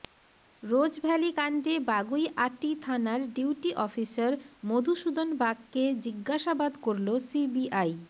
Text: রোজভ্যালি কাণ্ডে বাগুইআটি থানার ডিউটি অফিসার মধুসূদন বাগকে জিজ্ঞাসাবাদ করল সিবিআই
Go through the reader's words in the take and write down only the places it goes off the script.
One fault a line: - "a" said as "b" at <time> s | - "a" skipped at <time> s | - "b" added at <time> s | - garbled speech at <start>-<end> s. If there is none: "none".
none